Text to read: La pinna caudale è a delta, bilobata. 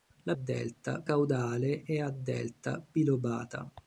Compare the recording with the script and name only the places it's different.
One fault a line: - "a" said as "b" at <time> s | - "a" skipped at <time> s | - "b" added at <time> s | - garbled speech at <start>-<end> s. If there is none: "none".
- "pinna" said as "delta" at 0.3 s